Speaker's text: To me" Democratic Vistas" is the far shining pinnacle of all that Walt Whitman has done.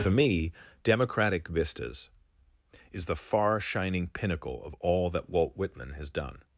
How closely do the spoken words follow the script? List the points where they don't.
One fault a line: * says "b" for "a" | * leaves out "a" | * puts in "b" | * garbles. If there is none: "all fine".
* says "For" for "To"